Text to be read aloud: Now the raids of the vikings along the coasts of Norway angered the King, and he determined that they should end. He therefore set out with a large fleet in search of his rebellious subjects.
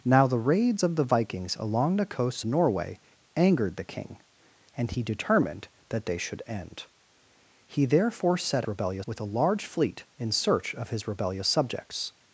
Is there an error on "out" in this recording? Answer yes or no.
yes